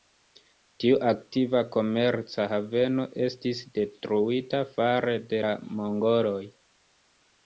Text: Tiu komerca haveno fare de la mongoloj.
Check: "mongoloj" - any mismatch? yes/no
no